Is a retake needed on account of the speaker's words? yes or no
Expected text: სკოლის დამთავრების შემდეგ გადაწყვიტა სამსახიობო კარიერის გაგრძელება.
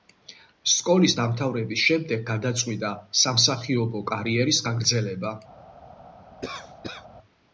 no